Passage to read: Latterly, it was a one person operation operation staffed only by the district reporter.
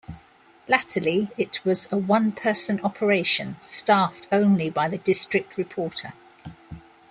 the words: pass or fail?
fail